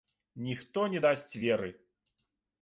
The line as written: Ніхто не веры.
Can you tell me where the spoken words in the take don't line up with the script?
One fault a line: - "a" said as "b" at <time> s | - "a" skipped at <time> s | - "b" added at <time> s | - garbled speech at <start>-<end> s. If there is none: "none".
- "дасць" added at 1.0 s